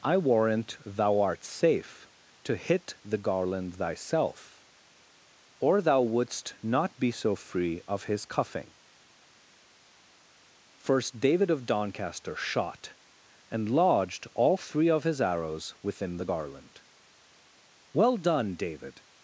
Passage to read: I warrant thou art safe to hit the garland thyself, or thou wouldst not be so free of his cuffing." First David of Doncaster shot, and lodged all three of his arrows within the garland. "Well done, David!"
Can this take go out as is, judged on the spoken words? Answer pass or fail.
pass